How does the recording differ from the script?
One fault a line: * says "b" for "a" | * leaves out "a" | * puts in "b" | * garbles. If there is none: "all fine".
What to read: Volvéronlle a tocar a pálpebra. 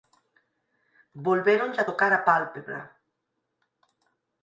all fine